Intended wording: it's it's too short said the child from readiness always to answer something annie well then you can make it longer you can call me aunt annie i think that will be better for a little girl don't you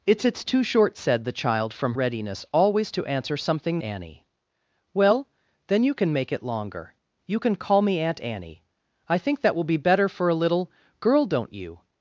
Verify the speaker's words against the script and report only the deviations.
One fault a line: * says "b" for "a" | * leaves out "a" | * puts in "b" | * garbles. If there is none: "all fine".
all fine